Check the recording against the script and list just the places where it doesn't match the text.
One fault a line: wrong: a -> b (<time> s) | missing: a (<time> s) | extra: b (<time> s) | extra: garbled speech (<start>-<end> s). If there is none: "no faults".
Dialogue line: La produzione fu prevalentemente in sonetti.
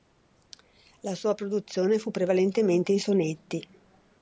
extra: sua (1.1 s)